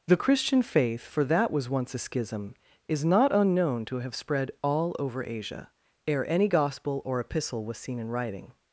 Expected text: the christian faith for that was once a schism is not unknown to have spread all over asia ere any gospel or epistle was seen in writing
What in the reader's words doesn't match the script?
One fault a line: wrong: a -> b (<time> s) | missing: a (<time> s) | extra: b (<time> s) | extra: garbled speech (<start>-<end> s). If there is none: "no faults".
no faults